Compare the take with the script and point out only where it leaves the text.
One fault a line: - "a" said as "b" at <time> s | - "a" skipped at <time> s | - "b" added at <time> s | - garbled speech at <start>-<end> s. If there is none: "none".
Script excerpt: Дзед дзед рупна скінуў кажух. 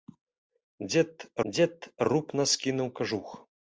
none